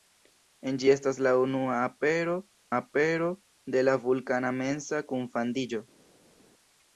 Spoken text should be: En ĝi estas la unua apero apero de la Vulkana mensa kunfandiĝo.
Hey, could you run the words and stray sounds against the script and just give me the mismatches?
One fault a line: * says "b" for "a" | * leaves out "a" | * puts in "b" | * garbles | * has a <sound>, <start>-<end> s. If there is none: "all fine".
all fine